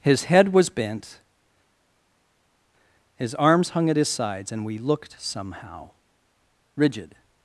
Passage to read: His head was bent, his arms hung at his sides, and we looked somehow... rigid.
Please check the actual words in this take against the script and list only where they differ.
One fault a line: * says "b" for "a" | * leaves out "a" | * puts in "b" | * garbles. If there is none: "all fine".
all fine